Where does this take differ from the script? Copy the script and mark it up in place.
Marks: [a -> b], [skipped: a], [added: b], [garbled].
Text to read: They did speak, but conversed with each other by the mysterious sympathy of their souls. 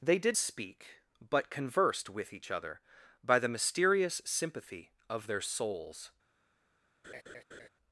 They did speak, but conversed with each other by the mysterious sympathy of their souls.